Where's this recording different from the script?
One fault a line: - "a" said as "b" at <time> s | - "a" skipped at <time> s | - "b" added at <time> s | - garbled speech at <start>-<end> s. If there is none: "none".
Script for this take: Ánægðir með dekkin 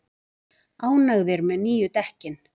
- "nýju" added at 1.7 s